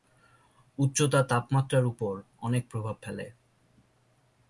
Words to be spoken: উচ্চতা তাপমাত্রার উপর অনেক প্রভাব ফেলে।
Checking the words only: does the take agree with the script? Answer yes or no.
yes